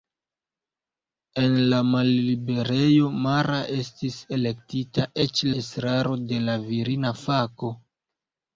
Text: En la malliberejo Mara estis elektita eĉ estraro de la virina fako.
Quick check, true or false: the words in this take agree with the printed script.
true